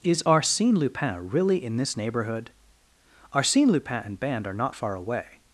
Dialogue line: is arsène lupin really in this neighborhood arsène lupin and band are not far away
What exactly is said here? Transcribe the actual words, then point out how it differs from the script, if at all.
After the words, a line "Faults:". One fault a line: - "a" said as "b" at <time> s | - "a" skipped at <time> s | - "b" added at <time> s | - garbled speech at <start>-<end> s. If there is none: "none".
is arsène lupin really in this neighborhood arsène lupin and band are not far away
Faults:
none